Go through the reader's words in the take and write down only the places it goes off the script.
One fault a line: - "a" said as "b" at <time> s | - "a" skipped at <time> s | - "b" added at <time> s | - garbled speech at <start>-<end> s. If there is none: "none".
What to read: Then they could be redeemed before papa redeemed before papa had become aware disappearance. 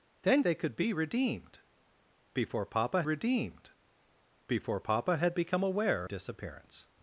none